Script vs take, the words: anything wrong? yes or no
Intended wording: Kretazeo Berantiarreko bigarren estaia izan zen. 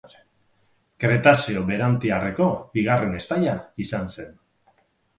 no